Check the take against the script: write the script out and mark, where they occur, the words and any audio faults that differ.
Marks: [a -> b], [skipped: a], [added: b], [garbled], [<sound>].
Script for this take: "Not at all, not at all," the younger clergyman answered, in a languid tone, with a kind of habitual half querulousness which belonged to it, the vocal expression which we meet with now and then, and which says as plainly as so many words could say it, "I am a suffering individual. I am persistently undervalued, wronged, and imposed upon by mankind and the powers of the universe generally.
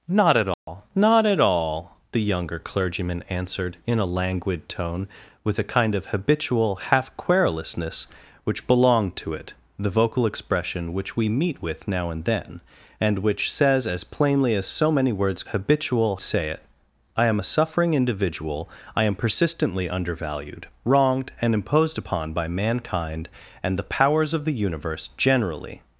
"Not at all, [dropout] not at all," the younger clergyman answered, in a languid tone, with a kind of habitual half querulousness which belonged to it, the vocal expression which we meet with now and then, and which says as plainly as so many words [could -> habitual] say it, "I am a suffering individual. I am persistently undervalued, wronged, and imposed upon by mankind and the powers of the universe generally.